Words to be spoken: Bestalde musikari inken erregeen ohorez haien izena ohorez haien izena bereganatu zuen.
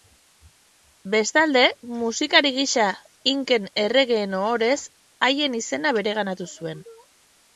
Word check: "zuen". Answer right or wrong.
right